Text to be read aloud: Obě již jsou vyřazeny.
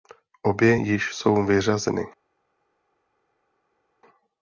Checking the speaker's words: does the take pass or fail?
pass